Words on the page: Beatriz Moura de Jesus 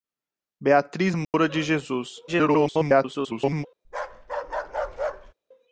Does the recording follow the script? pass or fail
fail